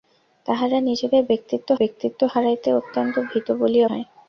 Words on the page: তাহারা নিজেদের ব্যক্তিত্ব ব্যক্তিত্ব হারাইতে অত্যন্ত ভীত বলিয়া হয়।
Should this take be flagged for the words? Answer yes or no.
no